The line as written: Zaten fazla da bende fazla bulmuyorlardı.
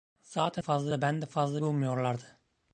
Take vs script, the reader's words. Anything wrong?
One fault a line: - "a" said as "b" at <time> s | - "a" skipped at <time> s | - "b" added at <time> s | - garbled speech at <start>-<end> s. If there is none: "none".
none